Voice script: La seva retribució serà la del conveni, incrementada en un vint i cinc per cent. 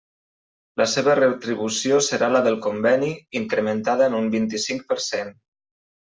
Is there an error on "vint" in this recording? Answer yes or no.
no